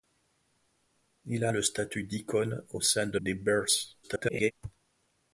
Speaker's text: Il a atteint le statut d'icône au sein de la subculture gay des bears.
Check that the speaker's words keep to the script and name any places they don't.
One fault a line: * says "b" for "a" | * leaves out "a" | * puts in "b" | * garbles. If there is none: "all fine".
* leaves out "atteint"
* leaves out "la subculture gay"
* garbles